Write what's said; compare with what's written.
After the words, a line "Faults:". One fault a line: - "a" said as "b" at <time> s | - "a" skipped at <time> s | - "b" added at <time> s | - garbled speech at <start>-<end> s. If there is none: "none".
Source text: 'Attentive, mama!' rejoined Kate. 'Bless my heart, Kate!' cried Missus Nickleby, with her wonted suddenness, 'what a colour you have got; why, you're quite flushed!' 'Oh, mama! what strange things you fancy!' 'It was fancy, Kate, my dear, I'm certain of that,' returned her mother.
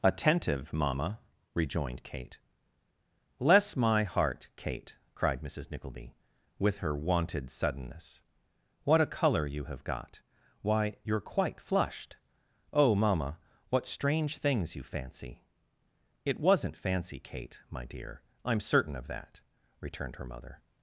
'Attentive, mama!' rejoined Kate. 'Bless my heart, Kate!' cried Missus Nickleby, with her wonted suddenness, 'what a colour you have got; why, you're quite flushed!' 'Oh, mama! what strange things you fancy!' 'It wasn't fancy, Kate, my dear, I'm certain of that,' returned her mother.
Faults:
- "was" said as "wasn't" at 16.4 s